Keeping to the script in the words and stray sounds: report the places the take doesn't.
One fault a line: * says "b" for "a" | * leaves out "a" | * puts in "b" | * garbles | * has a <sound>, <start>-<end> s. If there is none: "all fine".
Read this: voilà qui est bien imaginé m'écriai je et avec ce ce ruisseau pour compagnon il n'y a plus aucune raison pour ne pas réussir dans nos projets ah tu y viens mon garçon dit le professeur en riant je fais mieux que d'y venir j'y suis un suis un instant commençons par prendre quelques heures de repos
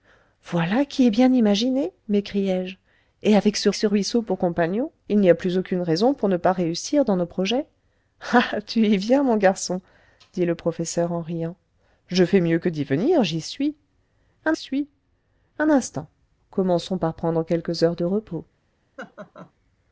* has a laugh, 19.0-19.5 s